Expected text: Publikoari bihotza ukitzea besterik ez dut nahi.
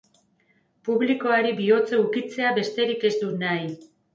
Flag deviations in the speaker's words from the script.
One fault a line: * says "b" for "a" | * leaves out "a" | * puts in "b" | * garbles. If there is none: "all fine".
all fine